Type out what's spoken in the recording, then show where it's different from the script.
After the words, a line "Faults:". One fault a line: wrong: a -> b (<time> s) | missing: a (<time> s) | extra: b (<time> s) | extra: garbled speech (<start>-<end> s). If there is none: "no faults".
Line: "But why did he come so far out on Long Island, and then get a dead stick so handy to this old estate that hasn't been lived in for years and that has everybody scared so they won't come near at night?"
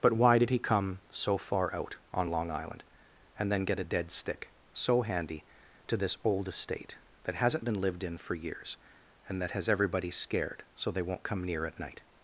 "But why did he come so far out on Long Island, and then get a dead stick so handy to this old estate that hasn't been lived in for years and that has everybody scared so they won't come near at night?"
Faults:
no faults